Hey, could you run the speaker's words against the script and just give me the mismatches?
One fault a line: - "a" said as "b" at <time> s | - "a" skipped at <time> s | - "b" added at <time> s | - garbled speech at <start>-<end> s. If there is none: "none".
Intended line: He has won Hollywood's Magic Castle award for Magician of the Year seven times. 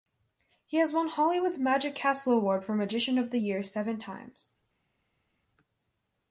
none